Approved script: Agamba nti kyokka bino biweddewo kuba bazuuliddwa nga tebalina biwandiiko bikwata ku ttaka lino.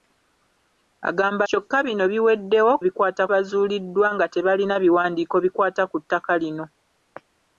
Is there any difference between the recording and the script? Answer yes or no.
yes